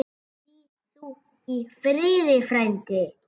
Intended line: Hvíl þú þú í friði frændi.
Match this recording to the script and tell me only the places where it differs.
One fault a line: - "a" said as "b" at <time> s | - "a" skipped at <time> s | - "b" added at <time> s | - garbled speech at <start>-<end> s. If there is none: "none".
- "þú" skipped at 1.1 s